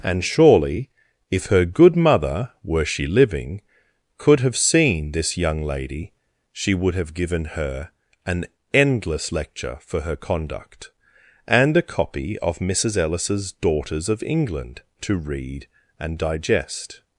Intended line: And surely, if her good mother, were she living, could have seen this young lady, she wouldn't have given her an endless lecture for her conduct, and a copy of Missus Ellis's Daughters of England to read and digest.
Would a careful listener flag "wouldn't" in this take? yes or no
yes